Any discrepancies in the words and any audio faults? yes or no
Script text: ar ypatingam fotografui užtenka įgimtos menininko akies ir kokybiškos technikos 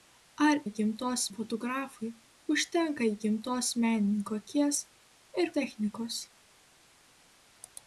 yes